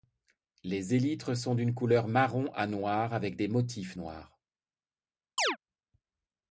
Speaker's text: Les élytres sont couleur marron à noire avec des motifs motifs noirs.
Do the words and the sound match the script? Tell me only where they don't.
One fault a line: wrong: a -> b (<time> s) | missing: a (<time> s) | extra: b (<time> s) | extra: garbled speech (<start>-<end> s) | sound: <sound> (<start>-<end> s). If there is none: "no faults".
extra: d'une (1.5 s)
missing: motifs (4.0 s)
sound: chirp (5.4-5.6 s)